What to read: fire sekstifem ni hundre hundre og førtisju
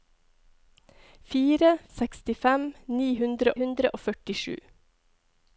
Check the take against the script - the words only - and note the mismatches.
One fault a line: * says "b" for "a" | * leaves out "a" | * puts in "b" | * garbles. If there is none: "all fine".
all fine